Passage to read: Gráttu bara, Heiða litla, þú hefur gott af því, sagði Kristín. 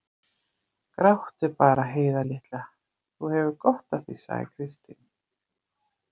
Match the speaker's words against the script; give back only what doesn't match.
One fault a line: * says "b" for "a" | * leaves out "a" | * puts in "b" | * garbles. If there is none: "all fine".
all fine